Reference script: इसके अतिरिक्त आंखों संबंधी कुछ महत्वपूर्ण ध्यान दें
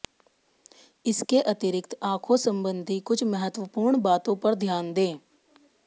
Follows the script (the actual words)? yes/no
no